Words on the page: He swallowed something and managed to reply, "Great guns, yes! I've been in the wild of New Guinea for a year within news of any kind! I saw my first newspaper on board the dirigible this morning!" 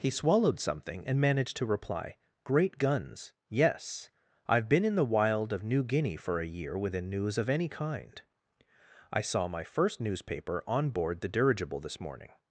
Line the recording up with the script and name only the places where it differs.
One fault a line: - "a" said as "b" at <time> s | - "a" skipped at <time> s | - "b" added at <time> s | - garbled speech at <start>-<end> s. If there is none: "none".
none